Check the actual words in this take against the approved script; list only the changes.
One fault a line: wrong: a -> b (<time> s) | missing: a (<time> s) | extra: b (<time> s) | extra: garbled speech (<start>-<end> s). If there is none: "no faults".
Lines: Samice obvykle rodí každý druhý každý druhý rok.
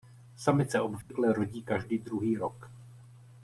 missing: každý druhý (2.4 s)